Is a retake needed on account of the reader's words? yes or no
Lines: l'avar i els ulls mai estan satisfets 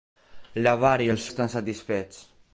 yes